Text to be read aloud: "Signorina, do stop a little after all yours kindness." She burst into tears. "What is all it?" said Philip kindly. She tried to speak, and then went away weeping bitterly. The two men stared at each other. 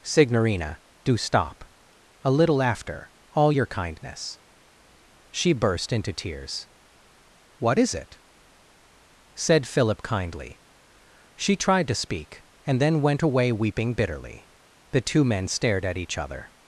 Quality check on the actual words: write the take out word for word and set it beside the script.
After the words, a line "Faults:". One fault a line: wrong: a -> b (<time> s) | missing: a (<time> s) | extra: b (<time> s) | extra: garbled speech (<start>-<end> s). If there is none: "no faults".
"Signorina, do stop a little after all your kindness." She burst into tears. "What is it?" said Philip kindly. She tried to speak, and then went away weeping bitterly. The two men stared at each other.
Faults:
wrong: yours -> your (3.5 s)
missing: all (7.9 s)